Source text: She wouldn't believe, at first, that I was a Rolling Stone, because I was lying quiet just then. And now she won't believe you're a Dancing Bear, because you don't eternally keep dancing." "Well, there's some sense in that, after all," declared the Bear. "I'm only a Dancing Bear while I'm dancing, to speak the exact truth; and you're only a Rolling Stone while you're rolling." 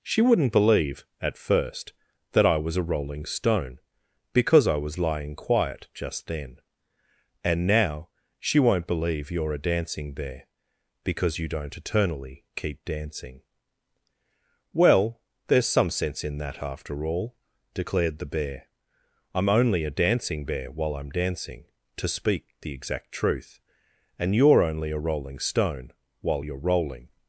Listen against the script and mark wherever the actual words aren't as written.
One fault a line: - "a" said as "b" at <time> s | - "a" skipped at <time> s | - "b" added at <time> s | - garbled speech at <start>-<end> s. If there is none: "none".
none